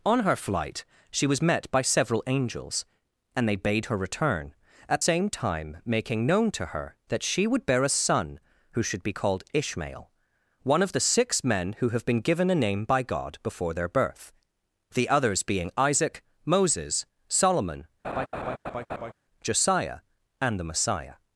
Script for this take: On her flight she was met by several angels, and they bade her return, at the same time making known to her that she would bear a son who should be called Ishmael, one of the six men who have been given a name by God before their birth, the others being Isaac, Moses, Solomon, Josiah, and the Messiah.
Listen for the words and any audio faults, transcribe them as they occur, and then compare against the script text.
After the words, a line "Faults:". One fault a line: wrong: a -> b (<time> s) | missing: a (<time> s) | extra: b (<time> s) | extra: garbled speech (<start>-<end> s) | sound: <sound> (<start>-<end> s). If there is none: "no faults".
On her flight she was met by several angels, and they bade her return, at same time making known to her that she would bear a son who should be called Ishmael, one of the six men who have been given a name by God before their birth, the others being Isaac, Moses, Solomon, Josiah, and the Messiah.
Faults:
missing: the (5.0 s)
sound: laugh (18.0-19.1 s)